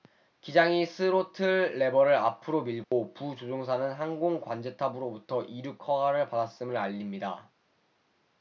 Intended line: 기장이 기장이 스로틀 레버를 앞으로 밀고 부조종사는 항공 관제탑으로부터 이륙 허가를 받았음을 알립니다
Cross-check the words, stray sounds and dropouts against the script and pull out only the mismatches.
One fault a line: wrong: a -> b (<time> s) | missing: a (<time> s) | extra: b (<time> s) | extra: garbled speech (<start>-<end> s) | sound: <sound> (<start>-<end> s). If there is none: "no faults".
missing: 기장이 (0.9 s)
sound: dropout (2.8-2.9 s)